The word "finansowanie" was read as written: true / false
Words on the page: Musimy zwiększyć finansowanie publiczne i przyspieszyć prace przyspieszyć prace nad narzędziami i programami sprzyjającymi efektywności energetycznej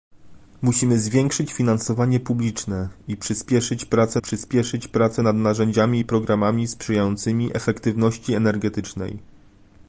true